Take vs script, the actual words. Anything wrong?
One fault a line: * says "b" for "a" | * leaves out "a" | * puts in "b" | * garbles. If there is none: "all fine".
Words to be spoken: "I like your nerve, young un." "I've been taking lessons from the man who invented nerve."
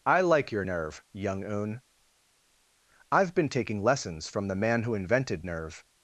all fine